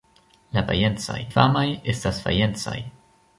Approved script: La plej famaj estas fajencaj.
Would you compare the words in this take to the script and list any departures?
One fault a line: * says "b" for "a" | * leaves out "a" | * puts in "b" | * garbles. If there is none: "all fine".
* says "fajencaj" for "plej"